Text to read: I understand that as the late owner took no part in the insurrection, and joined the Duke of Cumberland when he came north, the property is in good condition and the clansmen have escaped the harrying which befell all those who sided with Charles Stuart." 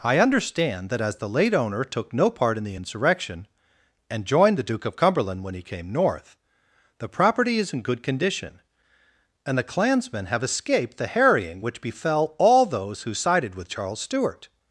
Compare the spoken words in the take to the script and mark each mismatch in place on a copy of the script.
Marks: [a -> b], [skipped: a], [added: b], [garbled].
I understand that as the late owner took no part in the insurrection, and joined the Duke of Cumberland when he came north, the property is in good condition and the clansmen have escaped the harrying which befell all those who sided with Charles Stuart."